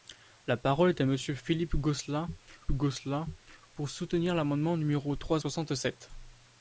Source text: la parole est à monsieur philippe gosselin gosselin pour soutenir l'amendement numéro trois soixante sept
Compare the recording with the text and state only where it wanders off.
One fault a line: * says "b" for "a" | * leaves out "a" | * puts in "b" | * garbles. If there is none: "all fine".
all fine